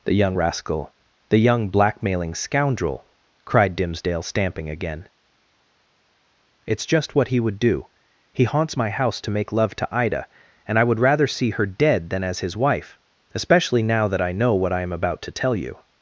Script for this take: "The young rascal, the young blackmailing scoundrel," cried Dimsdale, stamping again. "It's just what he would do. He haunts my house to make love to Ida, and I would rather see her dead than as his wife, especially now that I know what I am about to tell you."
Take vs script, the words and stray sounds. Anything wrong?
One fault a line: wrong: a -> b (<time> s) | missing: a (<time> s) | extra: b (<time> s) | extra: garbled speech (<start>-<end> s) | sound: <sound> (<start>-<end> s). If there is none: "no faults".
no faults